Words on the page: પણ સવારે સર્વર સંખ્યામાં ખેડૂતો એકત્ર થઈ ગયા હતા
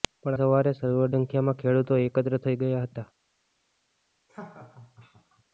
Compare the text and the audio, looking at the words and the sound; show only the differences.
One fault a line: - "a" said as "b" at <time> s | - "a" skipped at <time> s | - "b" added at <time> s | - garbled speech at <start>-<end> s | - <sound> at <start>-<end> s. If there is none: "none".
- laugh at 4.3-5.4 s